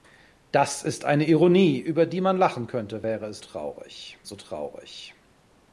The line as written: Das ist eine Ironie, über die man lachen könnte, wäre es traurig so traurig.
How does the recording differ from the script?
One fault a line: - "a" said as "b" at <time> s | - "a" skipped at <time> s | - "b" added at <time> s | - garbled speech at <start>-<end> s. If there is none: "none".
none